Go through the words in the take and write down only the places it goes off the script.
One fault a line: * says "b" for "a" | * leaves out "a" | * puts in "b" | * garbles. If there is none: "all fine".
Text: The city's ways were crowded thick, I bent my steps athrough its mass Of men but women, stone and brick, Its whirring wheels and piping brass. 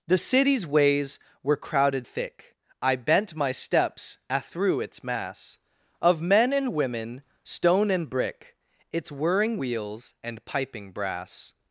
* says "and" for "but"